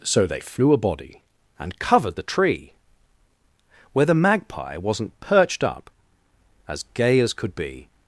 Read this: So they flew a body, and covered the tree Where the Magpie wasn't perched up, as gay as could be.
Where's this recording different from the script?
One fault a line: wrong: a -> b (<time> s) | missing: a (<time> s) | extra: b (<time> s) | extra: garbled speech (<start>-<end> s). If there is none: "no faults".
no faults